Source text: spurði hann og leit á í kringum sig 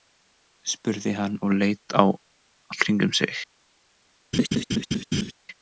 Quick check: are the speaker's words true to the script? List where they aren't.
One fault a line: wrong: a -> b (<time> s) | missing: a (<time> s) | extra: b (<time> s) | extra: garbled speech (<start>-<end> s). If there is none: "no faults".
no faults